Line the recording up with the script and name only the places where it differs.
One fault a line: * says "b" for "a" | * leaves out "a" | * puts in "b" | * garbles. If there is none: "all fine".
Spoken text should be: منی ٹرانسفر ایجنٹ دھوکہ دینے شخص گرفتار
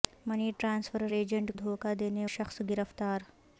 all fine